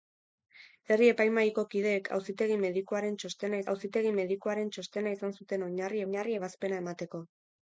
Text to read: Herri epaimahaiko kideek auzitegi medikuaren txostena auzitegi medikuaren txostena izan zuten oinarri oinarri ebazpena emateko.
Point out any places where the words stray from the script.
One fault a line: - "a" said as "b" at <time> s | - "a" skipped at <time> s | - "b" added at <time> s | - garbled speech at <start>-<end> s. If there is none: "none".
none